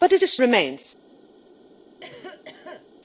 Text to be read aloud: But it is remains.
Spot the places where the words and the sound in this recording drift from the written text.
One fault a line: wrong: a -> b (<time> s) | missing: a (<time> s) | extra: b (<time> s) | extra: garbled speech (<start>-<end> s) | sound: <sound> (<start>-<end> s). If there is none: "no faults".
sound: cough (2.0-2.9 s)